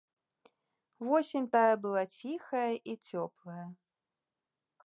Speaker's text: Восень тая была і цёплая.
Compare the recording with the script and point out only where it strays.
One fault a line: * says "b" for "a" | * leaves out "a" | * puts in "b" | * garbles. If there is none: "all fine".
* puts in "ціхая"